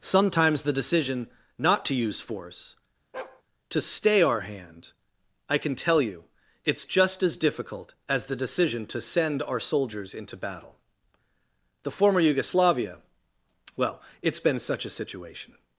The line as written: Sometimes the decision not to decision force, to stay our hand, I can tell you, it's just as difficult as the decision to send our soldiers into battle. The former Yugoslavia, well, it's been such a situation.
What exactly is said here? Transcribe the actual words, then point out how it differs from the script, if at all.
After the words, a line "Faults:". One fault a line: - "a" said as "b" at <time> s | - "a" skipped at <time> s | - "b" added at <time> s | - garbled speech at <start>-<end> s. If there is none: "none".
Sometimes the decision not to use force, to stay our hand, I can tell you, it's just as difficult as the decision to send our soldiers into battle. The former Yugoslavia, well, it's been such a situation.
Faults:
- "decision" said as "use" at 1.9 s